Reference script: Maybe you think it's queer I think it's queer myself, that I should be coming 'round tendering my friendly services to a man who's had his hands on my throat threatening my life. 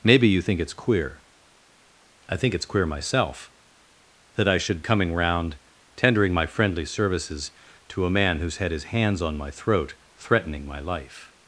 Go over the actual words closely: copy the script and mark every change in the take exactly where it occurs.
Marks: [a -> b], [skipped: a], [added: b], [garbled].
Maybe you think it's queer I think it's queer myself, that I should [skipped: be] coming 'round tendering my friendly services to a man who's had his hands on my throat threatening my life.